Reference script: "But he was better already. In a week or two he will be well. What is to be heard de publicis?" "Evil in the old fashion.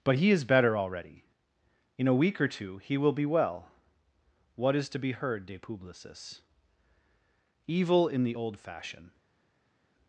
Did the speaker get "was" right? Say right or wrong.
wrong